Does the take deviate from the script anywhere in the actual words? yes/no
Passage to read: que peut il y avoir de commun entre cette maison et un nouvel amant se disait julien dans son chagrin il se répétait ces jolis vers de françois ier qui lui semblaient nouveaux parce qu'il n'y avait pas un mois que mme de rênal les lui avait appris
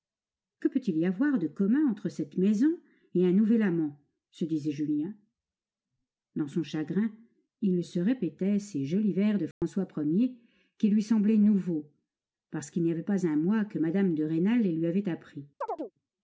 no